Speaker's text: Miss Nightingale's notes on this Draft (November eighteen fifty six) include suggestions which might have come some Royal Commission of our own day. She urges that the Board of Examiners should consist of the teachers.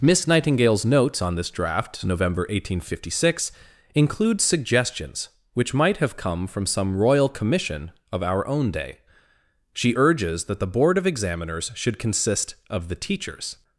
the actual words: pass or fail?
fail